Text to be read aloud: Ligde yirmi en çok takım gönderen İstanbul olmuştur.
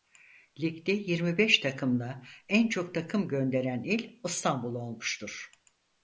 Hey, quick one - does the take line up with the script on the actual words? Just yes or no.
no